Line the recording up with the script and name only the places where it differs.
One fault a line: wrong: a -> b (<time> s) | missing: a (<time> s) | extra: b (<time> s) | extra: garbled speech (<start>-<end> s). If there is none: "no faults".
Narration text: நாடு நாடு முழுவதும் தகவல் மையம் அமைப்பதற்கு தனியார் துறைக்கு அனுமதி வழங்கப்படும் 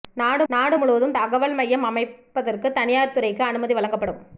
no faults